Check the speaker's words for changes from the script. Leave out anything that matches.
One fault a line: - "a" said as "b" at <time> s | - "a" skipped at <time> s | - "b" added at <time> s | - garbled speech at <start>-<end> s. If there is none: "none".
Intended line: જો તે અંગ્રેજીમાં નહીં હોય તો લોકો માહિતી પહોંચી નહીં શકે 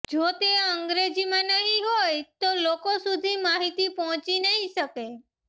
- "સુધી" added at 3.0 s